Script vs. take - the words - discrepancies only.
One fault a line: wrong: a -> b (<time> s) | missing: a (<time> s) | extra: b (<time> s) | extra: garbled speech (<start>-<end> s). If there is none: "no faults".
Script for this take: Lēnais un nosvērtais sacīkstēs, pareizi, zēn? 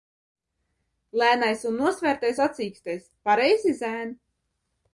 no faults